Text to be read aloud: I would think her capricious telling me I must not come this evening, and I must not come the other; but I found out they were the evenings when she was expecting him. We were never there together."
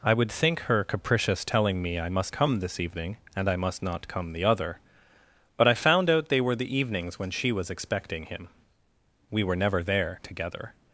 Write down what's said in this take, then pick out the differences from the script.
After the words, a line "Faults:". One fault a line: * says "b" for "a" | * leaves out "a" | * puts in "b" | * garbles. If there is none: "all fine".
I would think her capricious telling me I must come this evening, and I must not come the other; but I found out they were the evenings when she was expecting him. We were never there together."
Faults:
* leaves out "not"